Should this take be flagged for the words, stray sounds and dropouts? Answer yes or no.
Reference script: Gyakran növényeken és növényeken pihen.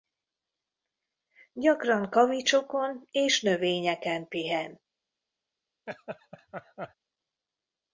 yes